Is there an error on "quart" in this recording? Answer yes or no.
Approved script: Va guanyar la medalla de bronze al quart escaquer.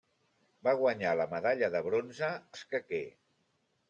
yes